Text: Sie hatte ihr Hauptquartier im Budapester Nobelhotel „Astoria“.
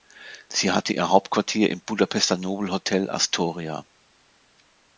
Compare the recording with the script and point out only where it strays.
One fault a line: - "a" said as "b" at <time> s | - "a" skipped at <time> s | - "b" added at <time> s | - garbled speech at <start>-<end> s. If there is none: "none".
none